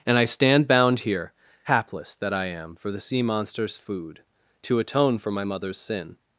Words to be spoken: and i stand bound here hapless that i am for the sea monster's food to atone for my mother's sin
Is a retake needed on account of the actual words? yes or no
no